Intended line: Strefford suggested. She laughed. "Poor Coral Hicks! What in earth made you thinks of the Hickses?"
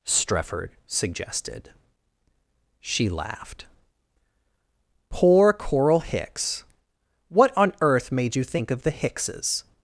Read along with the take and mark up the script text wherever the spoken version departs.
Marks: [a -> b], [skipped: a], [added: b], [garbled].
Strefford suggested. She laughed. "Poor Coral Hicks! What [in -> on] earth made you [thinks -> think] of the Hickses?"